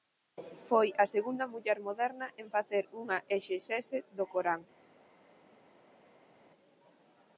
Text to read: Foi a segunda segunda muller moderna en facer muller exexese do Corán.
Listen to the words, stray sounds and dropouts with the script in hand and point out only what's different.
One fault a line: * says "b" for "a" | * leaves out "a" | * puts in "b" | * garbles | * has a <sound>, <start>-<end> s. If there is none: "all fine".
* leaves out "segunda"
* says "unha" for "muller"